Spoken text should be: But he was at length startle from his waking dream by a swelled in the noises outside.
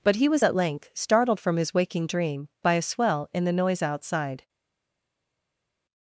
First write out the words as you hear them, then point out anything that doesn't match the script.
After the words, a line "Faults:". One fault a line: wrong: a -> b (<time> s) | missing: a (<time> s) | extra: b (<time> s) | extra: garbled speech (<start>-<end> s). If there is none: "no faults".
But he was at length startled from his waking dream by a swell in the noise outside.
Faults:
wrong: startle -> startled (0.9 s)
wrong: swelled -> swell (2.8 s)
wrong: noises -> noise (3.5 s)